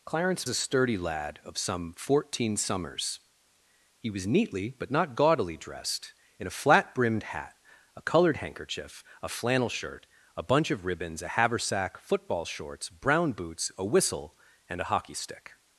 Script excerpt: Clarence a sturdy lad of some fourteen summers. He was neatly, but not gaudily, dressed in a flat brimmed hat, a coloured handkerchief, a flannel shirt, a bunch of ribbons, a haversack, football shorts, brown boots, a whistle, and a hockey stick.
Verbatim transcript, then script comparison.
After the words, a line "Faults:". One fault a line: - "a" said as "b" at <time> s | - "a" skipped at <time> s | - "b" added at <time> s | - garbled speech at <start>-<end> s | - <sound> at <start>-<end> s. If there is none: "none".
Clarence a sturdy lad of some fourteen summers. He was neatly, but not gaudily, dressed in a flat brimmed hat, a coloured handkerchief, a flannel shirt, a bunch of ribbons, a haversack, football shorts, brown boots, a whistle, and a hockey stick.
Faults:
none